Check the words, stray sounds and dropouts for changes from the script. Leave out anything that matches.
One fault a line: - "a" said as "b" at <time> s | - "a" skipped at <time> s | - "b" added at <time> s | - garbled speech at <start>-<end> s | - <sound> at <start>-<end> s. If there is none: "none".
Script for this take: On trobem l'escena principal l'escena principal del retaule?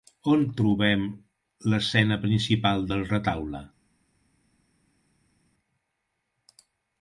- "l'escena principal" skipped at 2.9 s